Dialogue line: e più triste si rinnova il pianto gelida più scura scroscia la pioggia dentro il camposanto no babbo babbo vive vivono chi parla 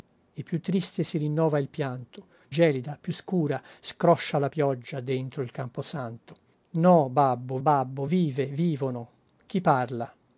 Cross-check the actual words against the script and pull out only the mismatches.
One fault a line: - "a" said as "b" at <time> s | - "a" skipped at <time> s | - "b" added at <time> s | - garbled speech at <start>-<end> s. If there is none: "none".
none